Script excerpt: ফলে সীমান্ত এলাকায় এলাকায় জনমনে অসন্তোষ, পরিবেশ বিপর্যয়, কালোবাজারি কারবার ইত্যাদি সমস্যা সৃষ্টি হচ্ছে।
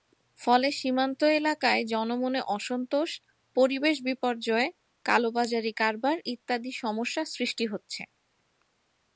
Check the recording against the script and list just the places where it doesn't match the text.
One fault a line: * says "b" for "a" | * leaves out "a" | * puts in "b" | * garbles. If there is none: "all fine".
* leaves out "এলাকায়"